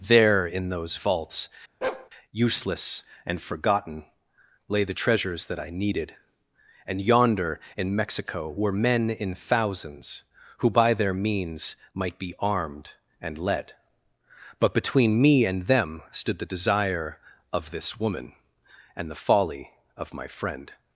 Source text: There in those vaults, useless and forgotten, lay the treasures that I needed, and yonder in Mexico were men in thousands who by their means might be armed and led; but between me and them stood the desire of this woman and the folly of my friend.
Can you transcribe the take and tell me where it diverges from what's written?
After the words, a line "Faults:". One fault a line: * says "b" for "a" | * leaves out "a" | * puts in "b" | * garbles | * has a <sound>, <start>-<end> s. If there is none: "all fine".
There in those vaults, useless and forgotten, lay the treasures that I needed, and yonder in Mexico were men in thousands who by their means might be armed and led; but between me and them stood the desire of this woman and the folly of my friend.
Faults:
* has a bark, 1.8-2.1 s